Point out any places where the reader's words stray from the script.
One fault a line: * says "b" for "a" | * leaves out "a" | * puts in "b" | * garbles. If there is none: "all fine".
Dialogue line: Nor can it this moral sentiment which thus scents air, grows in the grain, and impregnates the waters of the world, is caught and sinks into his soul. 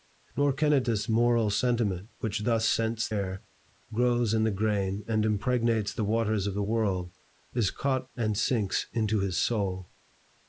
all fine